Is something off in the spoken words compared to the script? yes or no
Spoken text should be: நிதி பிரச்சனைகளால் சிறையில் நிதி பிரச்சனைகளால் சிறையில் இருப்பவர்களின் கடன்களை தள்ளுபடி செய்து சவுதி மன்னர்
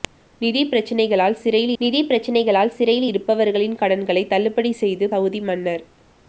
no